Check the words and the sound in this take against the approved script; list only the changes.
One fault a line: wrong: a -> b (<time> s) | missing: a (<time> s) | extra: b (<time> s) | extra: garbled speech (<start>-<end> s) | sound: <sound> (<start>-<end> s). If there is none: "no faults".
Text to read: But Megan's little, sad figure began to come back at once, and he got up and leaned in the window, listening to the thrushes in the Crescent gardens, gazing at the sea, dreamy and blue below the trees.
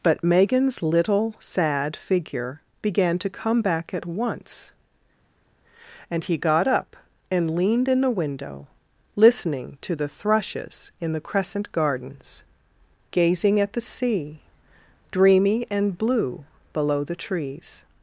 no faults